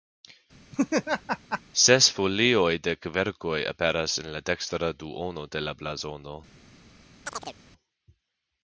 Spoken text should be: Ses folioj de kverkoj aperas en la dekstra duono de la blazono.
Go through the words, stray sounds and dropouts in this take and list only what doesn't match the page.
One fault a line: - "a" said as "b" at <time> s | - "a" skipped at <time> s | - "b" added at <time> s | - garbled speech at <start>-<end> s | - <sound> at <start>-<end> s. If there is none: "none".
- laugh at 0.7-1.6 s
- chirp at 7.3-7.6 s